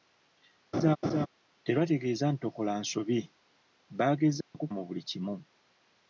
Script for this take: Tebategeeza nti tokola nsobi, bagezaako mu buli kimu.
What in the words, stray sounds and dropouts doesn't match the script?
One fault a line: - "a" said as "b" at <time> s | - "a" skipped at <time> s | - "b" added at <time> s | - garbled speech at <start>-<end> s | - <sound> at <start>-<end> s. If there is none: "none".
- laugh at 0.7-1.3 s
- dropout at 4.4-4.5 s